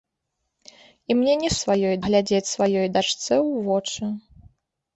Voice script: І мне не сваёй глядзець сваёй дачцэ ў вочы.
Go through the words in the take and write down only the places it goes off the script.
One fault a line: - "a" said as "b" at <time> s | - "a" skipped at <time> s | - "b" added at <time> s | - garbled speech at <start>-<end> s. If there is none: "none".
none